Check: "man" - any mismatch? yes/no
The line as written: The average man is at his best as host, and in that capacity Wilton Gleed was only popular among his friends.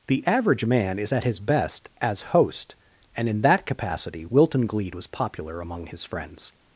no